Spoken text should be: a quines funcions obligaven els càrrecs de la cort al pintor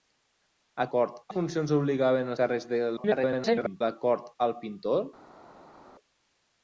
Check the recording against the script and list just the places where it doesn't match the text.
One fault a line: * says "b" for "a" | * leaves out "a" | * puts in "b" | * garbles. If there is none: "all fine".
* says "cort" for "quines"
* leaves out "els"
* garbles